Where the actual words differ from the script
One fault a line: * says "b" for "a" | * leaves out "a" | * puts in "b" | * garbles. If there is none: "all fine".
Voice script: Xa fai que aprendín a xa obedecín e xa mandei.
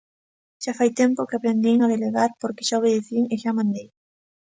* puts in "tempo"
* puts in "delegar porque"